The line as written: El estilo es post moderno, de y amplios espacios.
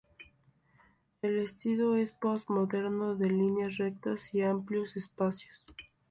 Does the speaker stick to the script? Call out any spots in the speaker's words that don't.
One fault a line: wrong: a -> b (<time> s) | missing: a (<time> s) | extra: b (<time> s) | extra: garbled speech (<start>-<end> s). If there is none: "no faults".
extra: líneas rectas (3.3 s)